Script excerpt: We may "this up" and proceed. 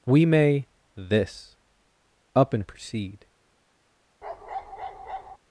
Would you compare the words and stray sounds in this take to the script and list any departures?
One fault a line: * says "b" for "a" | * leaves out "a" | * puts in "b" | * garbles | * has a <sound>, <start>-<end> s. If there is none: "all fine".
* has a bark, 4.2-5.4 s